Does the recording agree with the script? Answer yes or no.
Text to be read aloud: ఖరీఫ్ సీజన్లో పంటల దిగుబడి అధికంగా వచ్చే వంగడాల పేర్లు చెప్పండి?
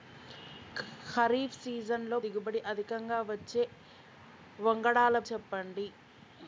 no